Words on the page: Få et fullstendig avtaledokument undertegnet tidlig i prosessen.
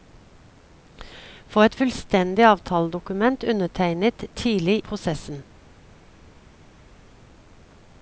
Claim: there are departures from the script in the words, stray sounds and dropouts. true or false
true